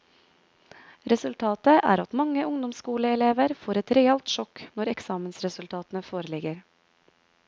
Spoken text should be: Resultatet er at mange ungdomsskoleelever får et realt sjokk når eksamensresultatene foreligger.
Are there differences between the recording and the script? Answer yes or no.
no